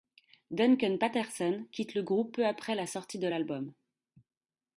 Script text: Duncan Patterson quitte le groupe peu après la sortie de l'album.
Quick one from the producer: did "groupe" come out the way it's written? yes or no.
yes